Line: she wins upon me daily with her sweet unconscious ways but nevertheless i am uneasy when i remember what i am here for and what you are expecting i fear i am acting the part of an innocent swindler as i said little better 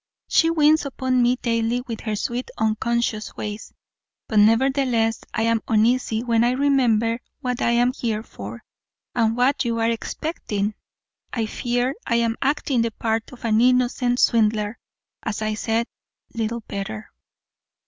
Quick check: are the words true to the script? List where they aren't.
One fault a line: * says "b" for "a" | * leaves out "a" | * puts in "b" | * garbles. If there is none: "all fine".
all fine